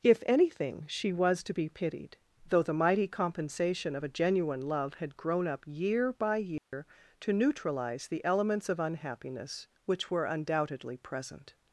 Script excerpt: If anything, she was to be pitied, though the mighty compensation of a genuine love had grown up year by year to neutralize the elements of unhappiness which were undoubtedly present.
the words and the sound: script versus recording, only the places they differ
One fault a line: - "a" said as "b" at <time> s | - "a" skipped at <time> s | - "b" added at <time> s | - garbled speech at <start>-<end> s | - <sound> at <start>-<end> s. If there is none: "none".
- dropout at 6.6-6.7 s